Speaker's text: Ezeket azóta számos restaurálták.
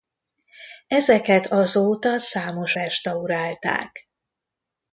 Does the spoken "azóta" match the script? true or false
true